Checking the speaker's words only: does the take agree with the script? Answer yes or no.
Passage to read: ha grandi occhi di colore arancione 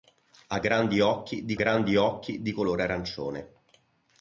no